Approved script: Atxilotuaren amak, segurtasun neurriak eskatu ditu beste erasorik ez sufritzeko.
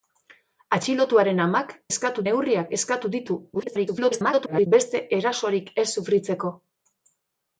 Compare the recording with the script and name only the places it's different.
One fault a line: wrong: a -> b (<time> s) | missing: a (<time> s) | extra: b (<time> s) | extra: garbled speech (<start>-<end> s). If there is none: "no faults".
wrong: segurtasun -> eskatu (1.9 s)
extra: garbled speech (3.5-4.7 s)